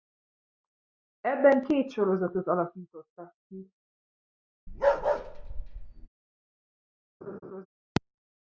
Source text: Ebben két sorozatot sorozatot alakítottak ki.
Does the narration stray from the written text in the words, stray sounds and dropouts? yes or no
yes